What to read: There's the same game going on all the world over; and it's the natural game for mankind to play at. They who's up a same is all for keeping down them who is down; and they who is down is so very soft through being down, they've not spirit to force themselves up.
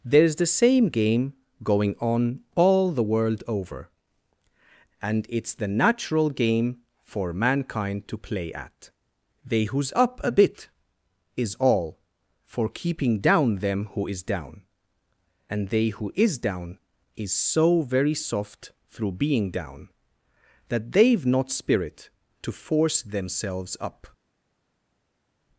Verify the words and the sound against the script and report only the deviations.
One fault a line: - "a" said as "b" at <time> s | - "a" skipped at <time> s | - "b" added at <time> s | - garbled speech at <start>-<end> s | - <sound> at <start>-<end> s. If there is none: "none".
- "same" said as "bit" at 10.3 s
- "that" added at 20.7 s